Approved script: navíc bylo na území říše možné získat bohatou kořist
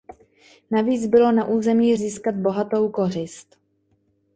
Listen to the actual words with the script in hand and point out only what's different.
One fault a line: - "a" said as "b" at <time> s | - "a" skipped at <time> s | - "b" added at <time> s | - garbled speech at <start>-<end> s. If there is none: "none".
- "říše možné" skipped at 1.9 s